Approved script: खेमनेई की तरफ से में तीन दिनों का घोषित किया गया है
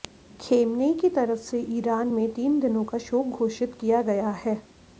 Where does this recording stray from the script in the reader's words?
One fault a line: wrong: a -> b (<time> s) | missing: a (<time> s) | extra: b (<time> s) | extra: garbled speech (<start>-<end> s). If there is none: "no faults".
extra: ईरान (1.8 s)
extra: शोक (3.1 s)